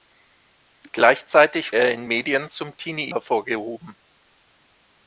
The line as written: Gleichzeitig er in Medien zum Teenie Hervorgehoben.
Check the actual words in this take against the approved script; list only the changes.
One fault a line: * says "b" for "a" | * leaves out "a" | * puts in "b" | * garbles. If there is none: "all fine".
all fine